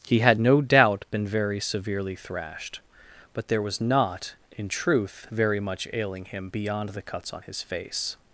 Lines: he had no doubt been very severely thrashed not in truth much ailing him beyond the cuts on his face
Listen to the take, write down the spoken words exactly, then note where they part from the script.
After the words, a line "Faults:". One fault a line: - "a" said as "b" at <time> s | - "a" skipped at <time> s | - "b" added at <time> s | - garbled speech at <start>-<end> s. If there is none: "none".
he had no doubt been very severely thrashed but there was not in truth very much ailing him beyond the cuts on his face
Faults:
- "but there was" added at 3.3 s
- "very" added at 5.3 s